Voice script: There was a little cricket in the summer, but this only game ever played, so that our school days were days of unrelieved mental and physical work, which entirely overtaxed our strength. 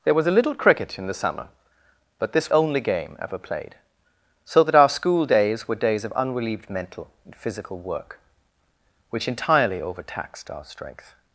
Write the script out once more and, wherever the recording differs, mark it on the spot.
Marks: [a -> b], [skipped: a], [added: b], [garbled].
There was a little cricket in the summer, but this only game ever played, so that our school days were days of unrelieved mental and physical work, which entirely overtaxed our strength.